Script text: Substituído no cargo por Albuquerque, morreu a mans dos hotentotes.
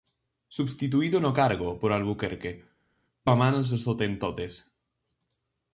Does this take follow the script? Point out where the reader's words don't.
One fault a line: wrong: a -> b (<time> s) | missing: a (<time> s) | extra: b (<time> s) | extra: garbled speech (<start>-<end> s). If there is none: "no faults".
missing: morreu (2.5 s)